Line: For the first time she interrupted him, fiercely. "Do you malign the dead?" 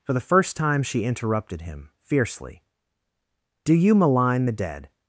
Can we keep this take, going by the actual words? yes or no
yes